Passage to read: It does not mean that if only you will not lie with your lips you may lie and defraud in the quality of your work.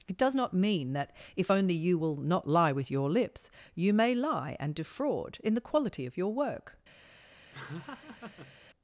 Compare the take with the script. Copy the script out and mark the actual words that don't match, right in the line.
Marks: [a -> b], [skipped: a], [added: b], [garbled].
It does not mean that if only you will not lie with your lips you may lie and defraud in the quality of your work.